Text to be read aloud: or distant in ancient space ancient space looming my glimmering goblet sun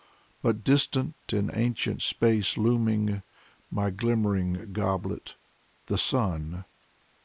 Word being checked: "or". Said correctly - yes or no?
no